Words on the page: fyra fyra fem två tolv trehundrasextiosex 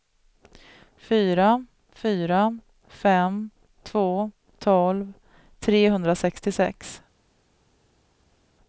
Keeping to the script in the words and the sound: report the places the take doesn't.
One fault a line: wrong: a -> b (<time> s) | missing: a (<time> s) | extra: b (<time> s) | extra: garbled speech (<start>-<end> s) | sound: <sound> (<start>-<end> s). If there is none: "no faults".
no faults